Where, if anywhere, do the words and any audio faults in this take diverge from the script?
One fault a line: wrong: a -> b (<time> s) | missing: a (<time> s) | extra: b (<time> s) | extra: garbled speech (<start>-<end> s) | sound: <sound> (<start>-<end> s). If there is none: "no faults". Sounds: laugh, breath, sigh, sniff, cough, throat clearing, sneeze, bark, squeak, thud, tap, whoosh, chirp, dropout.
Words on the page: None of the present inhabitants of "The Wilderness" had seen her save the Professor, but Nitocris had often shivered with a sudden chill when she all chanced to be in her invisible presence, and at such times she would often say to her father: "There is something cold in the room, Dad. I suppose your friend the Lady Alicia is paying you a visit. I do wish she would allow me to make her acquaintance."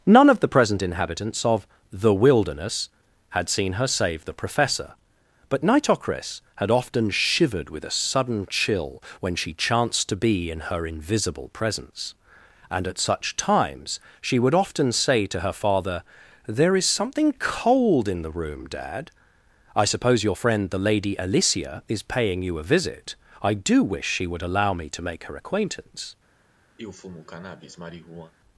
missing: all (9.5 s)
sound: sniff (26.8-28.3 s)